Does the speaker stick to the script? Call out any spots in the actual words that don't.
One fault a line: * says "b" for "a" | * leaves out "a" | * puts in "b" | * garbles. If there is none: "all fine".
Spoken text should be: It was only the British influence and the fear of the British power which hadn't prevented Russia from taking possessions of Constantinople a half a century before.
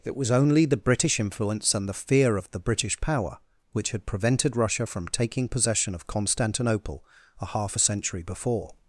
* says "had" for "hadn't"
* says "possession" for "possessions"